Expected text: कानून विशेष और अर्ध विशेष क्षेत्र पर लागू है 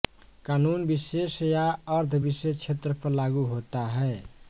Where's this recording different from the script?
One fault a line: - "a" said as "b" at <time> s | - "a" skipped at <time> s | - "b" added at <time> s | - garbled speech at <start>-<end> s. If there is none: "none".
- "और" said as "या" at 1.4 s
- "होता" added at 3.5 s